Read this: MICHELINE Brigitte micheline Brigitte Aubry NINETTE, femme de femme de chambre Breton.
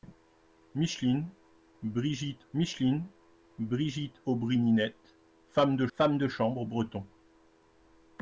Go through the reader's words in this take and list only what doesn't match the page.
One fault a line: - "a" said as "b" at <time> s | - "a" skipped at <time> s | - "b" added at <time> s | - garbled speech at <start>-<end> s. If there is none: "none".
none